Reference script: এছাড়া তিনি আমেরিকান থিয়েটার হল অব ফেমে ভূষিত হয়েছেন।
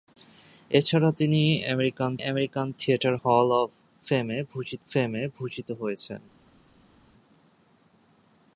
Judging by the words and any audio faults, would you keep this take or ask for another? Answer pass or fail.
fail